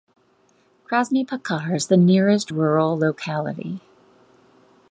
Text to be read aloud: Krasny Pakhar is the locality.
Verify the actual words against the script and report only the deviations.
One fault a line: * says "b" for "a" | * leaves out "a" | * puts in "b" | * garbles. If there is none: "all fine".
* puts in "nearest rural"